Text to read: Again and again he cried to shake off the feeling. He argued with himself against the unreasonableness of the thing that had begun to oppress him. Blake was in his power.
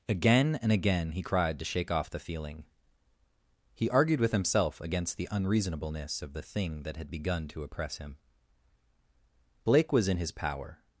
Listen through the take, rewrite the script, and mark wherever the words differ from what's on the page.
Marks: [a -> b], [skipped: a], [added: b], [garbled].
Again and again he cried to shake off the feeling. He argued with himself against the unreasonableness of the thing that had begun to oppress him. Blake was in his power.